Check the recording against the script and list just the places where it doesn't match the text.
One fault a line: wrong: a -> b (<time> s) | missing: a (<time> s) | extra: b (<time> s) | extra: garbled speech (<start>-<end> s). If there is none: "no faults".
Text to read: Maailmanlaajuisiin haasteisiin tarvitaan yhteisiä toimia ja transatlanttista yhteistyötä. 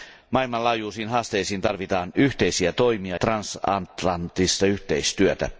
missing: ja (3.2 s)